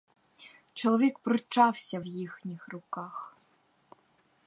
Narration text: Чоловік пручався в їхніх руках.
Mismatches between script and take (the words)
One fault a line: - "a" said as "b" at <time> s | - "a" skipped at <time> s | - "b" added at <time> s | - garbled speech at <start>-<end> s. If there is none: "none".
none